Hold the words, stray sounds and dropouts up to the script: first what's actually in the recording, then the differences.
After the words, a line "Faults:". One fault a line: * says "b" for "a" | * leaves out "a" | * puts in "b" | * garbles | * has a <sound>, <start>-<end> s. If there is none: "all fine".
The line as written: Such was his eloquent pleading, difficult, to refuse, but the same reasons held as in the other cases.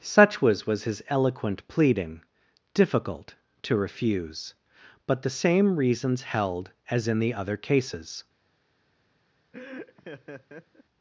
Such was was his eloquent pleading, difficult, to refuse, but the same reasons held as in the other cases.
Faults:
* puts in "was"
* has a laugh, 9.5-10.8 s